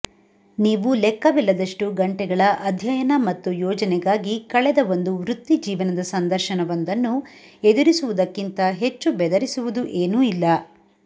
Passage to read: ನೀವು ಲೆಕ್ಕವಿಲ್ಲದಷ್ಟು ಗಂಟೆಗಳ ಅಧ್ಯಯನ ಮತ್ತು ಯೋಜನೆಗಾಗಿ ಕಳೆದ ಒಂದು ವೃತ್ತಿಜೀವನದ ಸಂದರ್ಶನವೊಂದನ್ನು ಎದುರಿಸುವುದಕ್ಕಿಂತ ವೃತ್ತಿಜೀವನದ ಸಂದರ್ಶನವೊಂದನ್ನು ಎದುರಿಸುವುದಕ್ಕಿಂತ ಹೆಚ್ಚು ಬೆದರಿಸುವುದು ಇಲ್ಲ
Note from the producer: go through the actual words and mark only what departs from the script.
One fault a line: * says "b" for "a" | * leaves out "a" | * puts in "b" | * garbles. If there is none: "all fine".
* leaves out "ವೃತ್ತಿಜೀವನದ ಸಂದರ್ಶನವೊಂದನ್ನು ಎದುರಿಸುವುದಕ್ಕಿಂತ"
* puts in "ಏನೂ"